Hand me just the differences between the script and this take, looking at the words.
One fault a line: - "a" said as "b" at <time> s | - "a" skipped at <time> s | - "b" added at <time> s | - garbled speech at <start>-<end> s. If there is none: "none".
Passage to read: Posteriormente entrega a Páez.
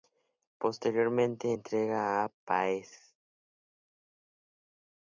none